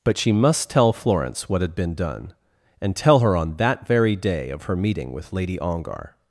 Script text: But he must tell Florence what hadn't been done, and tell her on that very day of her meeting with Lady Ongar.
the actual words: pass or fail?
fail